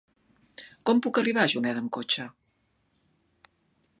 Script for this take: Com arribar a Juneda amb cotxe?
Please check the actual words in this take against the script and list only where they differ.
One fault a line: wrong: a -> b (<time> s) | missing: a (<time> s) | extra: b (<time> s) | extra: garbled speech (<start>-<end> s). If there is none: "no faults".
extra: puc (1.1 s)